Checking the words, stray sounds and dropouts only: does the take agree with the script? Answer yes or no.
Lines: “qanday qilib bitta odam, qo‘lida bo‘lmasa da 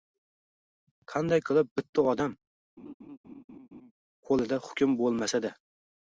no